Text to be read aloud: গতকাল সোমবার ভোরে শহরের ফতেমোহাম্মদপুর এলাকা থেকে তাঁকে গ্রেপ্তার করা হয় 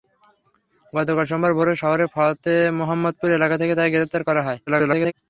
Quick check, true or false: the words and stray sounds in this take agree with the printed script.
false